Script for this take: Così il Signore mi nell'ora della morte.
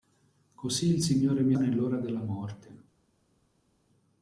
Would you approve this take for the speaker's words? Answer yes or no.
yes